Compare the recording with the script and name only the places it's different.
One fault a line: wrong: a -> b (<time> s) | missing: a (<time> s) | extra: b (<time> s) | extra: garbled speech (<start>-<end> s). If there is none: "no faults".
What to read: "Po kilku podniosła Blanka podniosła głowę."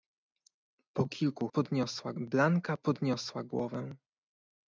no faults